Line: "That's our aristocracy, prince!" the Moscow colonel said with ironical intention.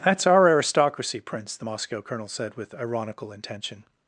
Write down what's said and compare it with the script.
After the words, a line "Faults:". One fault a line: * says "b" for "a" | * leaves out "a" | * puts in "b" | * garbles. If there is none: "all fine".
"That's our aristocracy, prince!" the Moscow colonel said with ironical intention.
Faults:
all fine